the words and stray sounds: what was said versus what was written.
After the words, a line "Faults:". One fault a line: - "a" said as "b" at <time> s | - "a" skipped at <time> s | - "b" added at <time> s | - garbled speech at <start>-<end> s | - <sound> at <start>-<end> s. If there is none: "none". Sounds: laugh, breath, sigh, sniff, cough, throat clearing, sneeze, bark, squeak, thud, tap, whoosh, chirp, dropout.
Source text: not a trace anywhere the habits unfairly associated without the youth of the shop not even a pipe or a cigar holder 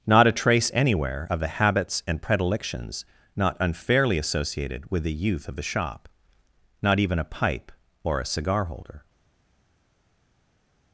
not a trace anywhere of the habits and predilections not unfairly associated with the youth of the shop not even a pipe or a cigar holder
Faults:
- "of" added at 1.3 s
- "and predilections not" added at 2.1 s
- "without" said as "with" at 4.9 s